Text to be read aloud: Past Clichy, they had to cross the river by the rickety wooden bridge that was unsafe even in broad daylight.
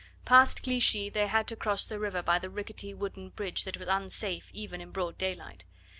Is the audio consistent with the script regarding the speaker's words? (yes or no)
yes